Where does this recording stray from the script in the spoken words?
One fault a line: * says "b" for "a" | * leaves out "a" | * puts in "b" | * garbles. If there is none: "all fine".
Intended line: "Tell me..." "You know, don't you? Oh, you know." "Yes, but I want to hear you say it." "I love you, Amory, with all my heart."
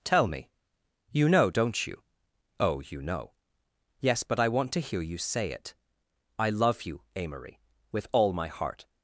all fine